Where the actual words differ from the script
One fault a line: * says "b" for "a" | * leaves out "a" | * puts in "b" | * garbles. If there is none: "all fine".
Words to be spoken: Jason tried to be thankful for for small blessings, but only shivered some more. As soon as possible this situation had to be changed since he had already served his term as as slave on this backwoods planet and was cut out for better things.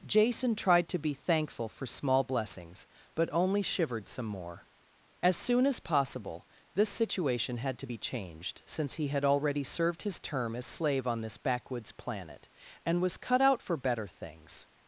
* leaves out "for"
* leaves out "as"